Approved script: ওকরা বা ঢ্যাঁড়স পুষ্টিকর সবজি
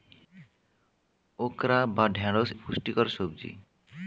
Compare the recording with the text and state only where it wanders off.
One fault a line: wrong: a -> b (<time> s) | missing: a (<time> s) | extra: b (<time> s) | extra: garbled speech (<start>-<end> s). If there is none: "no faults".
no faults